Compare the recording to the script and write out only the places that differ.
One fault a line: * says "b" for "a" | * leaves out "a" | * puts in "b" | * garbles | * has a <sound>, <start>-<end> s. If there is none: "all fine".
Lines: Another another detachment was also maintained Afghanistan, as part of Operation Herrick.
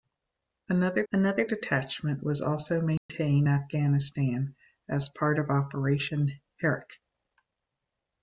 * has a dropout, 3.0-3.1 s